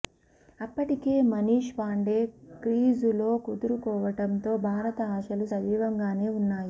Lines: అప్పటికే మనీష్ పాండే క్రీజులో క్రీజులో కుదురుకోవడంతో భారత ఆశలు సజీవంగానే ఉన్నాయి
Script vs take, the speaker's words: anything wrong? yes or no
yes